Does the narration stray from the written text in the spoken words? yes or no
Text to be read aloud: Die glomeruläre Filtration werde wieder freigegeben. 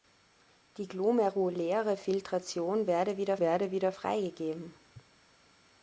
yes